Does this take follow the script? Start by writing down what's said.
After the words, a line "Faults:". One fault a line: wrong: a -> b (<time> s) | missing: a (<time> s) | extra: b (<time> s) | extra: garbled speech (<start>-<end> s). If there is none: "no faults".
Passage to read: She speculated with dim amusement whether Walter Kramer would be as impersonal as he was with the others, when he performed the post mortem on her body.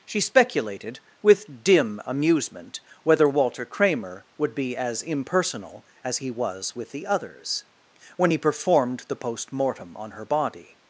She speculated with dim amusement whether Walter Kramer would be as impersonal as he was with the others, when he performed the post mortem on her body.
Faults:
no faults